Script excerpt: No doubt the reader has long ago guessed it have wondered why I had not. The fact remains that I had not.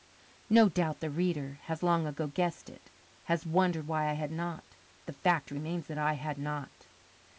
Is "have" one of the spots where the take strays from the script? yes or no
yes